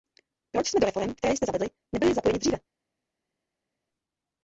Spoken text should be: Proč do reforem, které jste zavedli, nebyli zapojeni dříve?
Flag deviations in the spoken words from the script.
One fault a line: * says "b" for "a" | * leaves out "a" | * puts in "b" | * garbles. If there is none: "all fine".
* puts in "jsme"